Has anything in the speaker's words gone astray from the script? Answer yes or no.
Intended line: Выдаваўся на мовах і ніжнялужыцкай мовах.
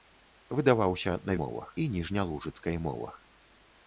no